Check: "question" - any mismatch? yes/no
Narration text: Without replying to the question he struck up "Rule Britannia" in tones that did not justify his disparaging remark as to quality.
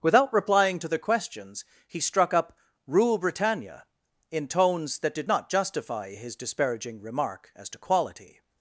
yes